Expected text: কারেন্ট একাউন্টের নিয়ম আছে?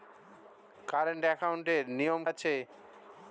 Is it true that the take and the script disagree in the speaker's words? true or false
false